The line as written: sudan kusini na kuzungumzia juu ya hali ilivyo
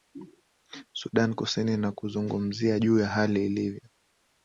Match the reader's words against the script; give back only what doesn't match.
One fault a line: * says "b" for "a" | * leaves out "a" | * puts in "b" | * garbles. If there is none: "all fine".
all fine